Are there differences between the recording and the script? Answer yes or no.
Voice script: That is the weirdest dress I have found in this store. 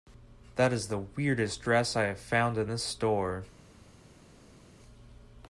no